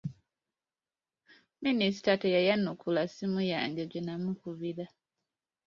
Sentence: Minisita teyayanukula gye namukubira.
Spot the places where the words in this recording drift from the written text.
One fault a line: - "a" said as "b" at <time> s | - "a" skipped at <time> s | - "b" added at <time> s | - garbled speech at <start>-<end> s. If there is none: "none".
- "ssimu yange" added at 3.1 s